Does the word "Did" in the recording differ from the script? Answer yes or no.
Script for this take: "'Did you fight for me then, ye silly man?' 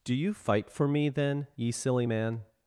yes